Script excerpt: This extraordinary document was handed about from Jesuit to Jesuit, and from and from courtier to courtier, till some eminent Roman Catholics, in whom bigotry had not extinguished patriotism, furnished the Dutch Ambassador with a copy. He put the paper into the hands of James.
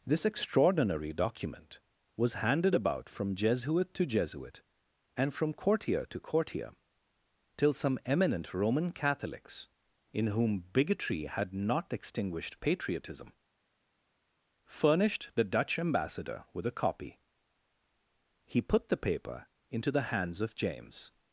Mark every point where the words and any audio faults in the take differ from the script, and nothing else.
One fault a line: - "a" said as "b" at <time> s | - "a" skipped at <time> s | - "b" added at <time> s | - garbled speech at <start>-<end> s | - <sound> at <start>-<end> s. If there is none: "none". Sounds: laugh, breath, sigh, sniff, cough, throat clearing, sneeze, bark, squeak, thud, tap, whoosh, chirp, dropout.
- "and from" skipped at 5.5 s